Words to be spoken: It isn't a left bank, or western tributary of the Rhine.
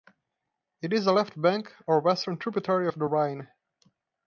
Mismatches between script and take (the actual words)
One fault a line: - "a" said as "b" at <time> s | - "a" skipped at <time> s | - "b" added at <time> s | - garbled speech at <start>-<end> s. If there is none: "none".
- "isn't" said as "is" at 0.9 s